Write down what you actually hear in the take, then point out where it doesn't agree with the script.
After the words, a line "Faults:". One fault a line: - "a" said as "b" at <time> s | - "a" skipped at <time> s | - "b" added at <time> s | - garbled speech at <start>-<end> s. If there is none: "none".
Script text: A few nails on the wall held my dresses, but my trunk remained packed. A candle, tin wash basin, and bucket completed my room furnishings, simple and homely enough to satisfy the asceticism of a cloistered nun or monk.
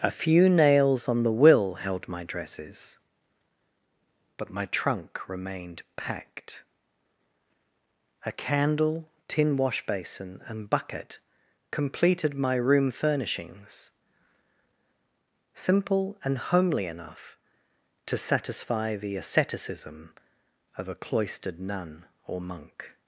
A few nails on the will held my dresses, but my trunk remained packed. A candle, tin wash basin, and bucket completed my room furnishings, simple and homely enough to satisfy the asceticism of a cloistered nun or monk.
Faults:
- "wall" said as "will" at 1.3 s